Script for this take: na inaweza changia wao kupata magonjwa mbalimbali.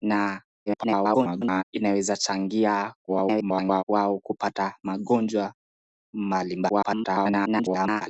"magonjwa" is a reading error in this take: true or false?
false